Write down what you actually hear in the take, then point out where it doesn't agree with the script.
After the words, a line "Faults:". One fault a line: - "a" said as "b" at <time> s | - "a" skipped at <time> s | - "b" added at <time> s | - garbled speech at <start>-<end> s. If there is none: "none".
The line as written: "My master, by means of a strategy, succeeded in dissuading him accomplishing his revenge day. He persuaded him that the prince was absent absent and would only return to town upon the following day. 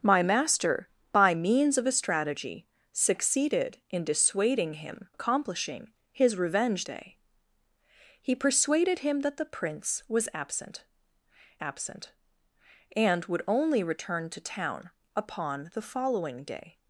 "My master, by means of a strategy, succeeded in dissuading him accomplishing his revenge day. He persuaded him that the prince was absent absent and would only return to town upon the following day.
Faults:
none